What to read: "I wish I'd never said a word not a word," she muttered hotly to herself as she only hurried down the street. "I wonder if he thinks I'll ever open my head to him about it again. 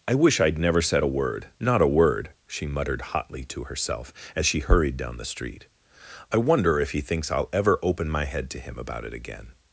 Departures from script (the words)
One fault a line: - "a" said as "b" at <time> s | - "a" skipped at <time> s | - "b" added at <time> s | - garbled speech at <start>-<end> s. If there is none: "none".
- "only" skipped at 4.6 s